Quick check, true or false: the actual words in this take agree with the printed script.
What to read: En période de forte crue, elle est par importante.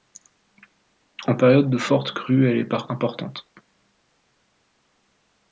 true